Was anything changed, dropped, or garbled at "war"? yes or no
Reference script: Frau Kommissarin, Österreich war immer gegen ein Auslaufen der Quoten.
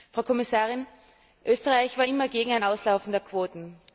no